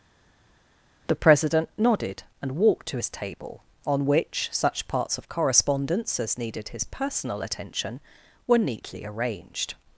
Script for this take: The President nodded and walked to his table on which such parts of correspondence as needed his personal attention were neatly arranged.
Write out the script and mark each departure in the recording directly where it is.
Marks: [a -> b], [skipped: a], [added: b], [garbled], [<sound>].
The President nodded and walked to his table on which such parts of correspondence as needed his personal attention were neatly arranged.